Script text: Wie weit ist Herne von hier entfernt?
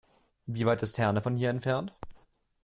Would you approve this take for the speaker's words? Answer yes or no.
yes